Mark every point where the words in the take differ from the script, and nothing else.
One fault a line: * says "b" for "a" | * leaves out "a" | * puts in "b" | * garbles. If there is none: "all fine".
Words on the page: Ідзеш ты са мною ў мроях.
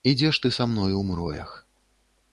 all fine